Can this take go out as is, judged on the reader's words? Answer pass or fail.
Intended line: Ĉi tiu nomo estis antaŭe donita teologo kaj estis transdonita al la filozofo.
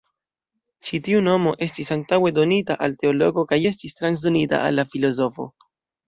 fail